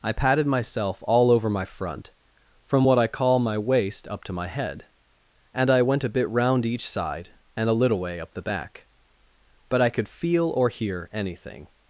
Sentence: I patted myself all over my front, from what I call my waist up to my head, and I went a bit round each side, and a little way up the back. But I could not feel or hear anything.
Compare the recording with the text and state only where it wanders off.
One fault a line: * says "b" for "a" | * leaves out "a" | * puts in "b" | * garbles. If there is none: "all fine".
* leaves out "not"